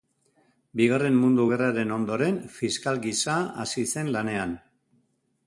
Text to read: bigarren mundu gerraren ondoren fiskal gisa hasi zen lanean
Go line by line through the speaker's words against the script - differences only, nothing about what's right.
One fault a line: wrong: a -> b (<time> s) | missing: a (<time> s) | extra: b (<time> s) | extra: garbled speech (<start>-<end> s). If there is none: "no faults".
no faults